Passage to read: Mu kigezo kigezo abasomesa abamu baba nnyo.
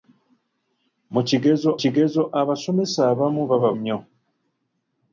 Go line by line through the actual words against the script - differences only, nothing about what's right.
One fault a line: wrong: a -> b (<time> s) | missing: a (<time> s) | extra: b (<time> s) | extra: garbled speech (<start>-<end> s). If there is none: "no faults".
no faults